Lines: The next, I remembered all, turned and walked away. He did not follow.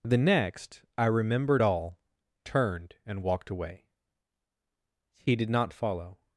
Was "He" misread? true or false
false